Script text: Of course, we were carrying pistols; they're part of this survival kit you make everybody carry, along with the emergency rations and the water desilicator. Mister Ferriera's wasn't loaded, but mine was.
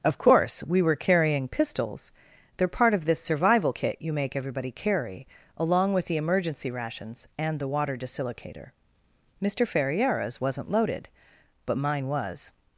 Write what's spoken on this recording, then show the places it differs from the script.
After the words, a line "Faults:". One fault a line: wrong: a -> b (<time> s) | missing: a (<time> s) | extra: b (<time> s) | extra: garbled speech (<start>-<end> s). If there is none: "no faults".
Of course, we were carrying pistols; they're part of this survival kit you make everybody carry, along with the emergency rations and the water desilicator. Mister Ferriera's wasn't loaded, but mine was.
Faults:
no faults